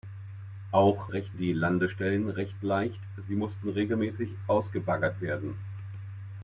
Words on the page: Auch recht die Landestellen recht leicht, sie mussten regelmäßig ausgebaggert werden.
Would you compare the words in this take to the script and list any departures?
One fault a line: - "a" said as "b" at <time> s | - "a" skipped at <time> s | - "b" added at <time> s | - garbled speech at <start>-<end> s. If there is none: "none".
none